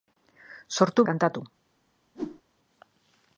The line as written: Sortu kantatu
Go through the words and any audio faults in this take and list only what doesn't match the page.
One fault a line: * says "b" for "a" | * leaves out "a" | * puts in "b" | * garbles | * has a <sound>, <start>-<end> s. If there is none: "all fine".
* has a whoosh, 2.1-2.4 s